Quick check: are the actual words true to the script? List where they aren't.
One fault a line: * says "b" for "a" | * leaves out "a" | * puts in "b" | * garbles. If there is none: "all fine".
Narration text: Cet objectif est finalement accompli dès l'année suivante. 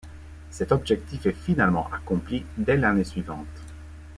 all fine